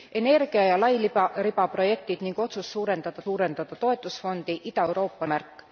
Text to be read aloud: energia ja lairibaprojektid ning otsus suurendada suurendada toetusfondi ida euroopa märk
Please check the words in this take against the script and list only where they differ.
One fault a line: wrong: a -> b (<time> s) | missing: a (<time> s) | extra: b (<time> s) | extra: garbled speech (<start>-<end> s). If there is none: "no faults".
no faults